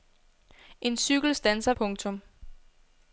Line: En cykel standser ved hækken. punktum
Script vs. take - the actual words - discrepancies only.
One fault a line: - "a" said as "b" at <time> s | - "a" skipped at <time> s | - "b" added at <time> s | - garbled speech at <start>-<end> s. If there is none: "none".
- "ved hækken" skipped at 1.7 s